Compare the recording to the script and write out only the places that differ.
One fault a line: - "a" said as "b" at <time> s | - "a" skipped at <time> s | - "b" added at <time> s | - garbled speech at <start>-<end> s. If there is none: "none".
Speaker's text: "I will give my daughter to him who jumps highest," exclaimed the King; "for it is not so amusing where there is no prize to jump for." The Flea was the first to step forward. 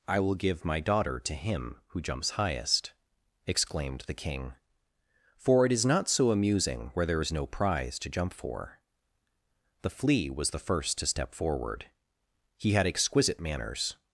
- "He had exquisite manners" added at 12.6 s